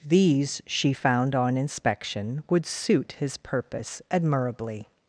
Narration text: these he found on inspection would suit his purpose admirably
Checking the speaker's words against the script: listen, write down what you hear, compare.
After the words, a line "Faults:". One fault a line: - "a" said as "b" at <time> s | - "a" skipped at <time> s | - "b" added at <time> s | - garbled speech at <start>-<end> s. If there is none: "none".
these she found on inspection would suit his purpose admirably
Faults:
- "he" said as "she" at 0.7 s